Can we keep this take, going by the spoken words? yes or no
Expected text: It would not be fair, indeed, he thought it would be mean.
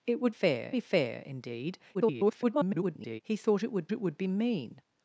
no